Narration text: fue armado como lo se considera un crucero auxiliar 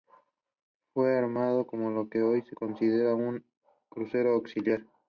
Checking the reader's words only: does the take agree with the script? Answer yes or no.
no